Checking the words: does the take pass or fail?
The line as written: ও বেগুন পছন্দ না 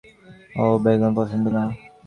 pass